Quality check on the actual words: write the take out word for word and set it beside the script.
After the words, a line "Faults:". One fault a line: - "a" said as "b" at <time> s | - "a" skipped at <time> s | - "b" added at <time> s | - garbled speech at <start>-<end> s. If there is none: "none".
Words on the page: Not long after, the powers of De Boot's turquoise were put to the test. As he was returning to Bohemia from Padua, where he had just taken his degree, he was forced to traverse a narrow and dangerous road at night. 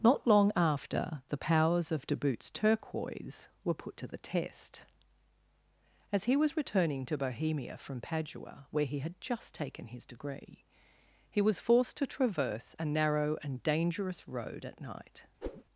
Not long after, the powers of De Boot's turquoise were put to the test. As he was returning to Bohemia from Padua, where he had just taken his degree, he was forced to traverse a narrow and dangerous road at night.
Faults:
none